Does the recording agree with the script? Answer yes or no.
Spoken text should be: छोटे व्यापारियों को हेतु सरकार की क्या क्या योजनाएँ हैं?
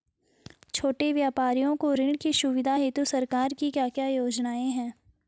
no